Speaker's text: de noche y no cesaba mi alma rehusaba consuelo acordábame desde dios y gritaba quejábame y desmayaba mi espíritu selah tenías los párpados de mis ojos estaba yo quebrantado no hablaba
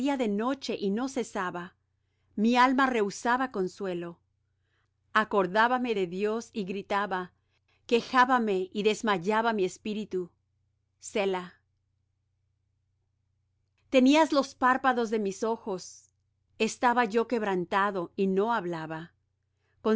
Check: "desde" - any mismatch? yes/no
yes